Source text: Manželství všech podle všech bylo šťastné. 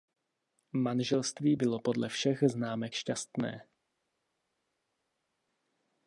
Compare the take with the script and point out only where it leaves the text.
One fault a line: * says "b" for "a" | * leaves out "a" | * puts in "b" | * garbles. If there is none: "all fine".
* says "bylo" for "všech"
* says "známek" for "bylo"